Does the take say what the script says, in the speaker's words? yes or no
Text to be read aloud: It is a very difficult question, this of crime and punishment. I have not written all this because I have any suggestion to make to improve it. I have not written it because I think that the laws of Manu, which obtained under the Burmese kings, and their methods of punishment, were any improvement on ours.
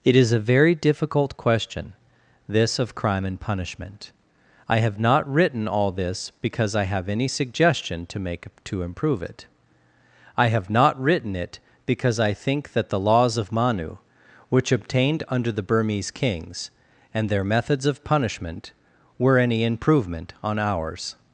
yes